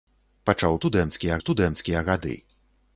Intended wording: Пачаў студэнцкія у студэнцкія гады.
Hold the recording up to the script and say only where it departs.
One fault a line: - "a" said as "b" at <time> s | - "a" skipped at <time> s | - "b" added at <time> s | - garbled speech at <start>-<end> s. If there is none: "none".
none